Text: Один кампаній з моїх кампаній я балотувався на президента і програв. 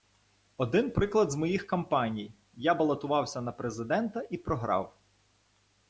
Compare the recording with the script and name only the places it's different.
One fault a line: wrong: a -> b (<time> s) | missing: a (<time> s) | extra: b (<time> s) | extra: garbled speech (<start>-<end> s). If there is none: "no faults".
wrong: кампаній -> приклад (0.9 s)